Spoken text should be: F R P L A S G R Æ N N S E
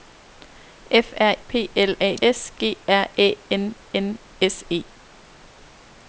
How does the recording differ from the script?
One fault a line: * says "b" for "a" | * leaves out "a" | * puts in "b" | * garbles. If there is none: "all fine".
all fine